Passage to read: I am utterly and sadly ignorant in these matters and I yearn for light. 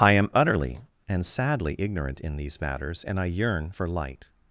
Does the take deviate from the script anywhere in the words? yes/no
no